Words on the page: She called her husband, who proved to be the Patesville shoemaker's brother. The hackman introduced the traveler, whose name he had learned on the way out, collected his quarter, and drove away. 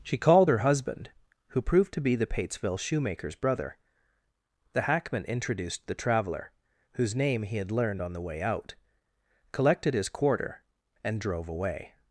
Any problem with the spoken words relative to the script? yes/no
no